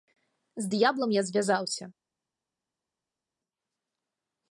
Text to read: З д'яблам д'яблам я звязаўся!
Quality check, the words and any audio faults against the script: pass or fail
fail